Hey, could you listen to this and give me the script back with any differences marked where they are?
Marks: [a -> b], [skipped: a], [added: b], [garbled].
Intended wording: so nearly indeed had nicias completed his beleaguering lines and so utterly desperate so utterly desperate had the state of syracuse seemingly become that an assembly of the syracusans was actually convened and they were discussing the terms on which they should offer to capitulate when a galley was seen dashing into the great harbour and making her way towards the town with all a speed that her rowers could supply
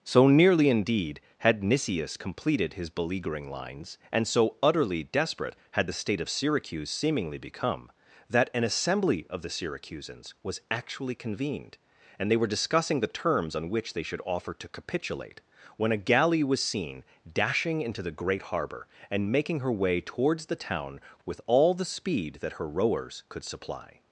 so nearly indeed had nicias completed his beleaguering lines and so utterly desperate [skipped: so utterly desperate] had the state of syracuse seemingly become that an assembly of the syracusans was actually convened and they were discussing the terms on which they should offer to capitulate when a galley was seen dashing into the great harbour and making her way towards the town with all [a -> the] speed that her rowers could supply